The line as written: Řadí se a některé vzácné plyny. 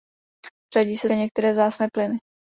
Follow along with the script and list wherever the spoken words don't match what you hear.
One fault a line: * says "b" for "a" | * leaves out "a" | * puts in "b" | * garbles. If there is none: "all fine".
all fine